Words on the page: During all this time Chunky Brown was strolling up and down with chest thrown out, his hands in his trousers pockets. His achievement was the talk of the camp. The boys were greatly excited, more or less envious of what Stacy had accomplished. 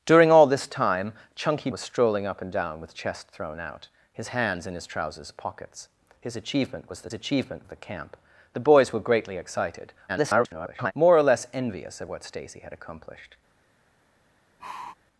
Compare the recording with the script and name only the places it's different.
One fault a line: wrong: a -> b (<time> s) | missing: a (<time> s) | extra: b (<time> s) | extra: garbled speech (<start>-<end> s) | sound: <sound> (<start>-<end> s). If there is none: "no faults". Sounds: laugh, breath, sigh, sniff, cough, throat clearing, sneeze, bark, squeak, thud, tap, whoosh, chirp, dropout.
missing: Brown (1.7 s)
wrong: talk -> achievement (7.1 s)
extra: garbled speech (10.1-10.9 s)
sound: sigh (14.6-14.9 s)